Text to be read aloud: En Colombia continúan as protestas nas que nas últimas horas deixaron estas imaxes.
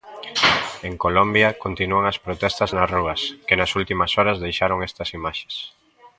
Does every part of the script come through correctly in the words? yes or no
no